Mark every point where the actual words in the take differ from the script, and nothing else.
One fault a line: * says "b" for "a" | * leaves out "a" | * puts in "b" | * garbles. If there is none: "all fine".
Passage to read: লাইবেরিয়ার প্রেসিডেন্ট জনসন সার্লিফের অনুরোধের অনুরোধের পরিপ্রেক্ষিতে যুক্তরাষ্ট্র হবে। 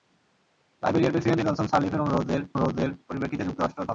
all fine